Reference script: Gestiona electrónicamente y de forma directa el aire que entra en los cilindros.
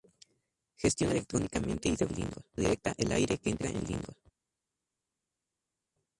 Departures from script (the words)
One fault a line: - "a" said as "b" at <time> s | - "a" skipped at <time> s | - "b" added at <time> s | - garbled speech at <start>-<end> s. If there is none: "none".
- "forma" said as "cilindros" at 2.1 s
- "los" skipped at 3.8 s